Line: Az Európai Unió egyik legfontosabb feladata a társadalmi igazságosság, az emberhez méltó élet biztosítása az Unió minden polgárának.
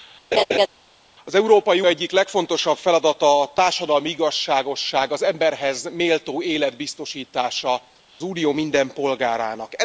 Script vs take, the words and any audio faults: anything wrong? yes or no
yes